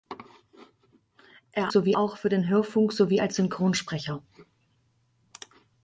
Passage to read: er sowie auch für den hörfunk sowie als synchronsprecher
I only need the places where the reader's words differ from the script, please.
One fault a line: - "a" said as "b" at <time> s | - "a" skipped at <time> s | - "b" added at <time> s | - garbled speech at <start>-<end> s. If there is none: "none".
none